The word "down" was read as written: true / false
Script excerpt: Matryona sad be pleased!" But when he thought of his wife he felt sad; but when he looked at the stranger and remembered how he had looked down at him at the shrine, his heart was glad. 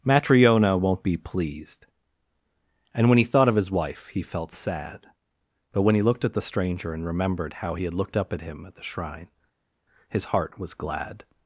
false